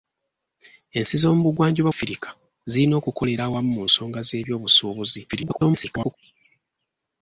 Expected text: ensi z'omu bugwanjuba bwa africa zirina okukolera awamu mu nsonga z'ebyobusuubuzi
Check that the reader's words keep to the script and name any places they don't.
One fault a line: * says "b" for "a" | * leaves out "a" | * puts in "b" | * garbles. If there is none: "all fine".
* leaves out "bwa"
* garbles